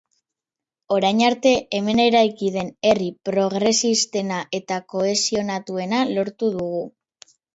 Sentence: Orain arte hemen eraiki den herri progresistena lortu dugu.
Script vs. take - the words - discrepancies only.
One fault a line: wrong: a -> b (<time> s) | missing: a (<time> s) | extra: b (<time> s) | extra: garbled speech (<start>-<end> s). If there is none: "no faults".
extra: eta kohesionatuena (4.6 s)